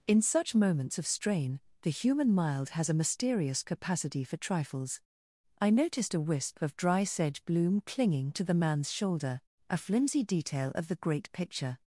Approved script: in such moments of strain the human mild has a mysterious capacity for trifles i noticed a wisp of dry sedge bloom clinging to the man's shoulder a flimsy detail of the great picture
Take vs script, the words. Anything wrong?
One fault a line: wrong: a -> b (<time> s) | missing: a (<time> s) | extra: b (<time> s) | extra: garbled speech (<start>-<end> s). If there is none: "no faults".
no faults